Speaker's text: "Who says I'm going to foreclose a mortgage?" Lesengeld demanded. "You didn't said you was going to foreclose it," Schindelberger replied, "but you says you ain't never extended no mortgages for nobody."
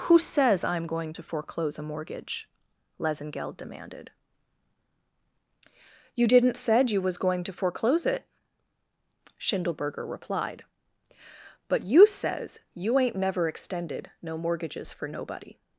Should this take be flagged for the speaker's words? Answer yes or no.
no